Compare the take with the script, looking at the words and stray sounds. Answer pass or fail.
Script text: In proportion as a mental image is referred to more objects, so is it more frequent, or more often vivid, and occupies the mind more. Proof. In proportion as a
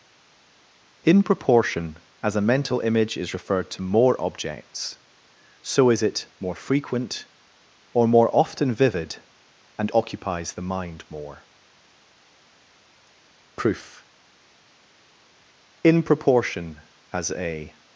pass